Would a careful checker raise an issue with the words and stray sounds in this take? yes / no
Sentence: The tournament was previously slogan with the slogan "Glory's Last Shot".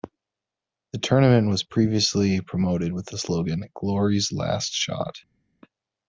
yes